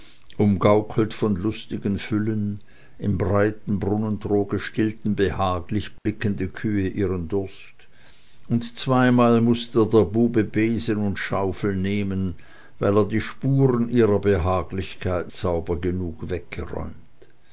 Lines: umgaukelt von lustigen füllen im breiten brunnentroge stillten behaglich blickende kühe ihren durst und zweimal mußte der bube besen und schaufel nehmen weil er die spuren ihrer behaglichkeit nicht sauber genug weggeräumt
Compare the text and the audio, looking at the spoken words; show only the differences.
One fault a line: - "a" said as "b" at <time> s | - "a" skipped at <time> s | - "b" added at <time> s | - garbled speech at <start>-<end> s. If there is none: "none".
- "nicht" skipped at 15.3 s